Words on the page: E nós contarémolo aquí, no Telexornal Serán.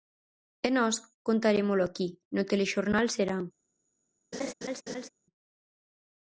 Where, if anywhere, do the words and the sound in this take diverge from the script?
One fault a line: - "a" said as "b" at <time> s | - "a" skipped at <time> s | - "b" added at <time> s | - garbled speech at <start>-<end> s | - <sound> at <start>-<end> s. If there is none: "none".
- laugh at 4.3-5.1 s